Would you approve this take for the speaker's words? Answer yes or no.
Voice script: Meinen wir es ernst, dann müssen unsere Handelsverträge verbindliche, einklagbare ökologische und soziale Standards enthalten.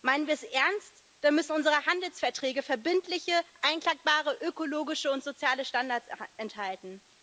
yes